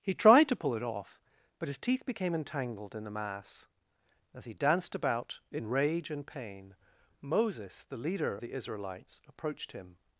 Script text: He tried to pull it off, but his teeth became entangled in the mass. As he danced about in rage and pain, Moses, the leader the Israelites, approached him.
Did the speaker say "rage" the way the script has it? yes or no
yes